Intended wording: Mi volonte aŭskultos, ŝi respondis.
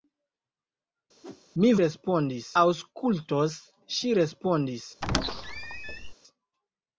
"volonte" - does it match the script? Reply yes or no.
no